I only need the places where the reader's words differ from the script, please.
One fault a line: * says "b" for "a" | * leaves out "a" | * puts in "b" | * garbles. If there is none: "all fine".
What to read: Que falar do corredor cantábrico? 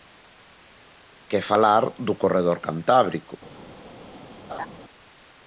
all fine